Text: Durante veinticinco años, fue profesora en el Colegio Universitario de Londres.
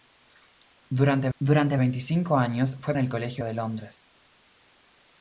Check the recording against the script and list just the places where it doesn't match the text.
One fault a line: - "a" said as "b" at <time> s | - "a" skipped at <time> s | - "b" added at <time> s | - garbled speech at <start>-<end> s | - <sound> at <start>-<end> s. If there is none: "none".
- "durante" added at 1.4 s
- "profesora" skipped at 3.0 s
- "Universitario" skipped at 3.4 s